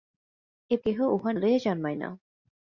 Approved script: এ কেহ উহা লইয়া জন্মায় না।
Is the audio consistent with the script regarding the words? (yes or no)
yes